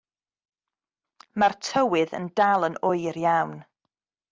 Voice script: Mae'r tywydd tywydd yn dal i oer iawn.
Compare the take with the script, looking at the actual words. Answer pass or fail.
fail